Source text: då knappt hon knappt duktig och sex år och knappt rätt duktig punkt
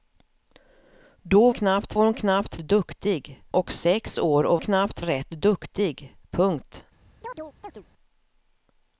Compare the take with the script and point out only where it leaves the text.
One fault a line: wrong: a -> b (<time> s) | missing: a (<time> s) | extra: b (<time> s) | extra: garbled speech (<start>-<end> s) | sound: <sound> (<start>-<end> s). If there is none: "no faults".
sound: chirp (7.2-7.8 s)